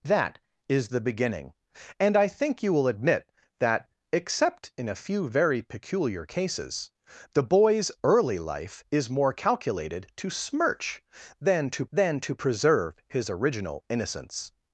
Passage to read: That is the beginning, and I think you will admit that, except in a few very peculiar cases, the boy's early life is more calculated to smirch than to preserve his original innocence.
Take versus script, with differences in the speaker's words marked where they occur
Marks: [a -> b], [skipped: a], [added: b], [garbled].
That is the beginning, and I think you will admit that, except in a few very peculiar cases, the boy's early life is more calculated to smirch than to [added: than to] preserve his original innocence.